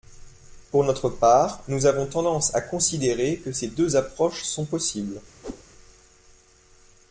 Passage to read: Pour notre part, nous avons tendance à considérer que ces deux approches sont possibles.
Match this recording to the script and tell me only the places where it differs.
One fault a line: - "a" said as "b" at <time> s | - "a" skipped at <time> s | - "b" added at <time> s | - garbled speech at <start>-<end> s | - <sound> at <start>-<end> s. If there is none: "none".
- whoosh at 5.4-5.6 s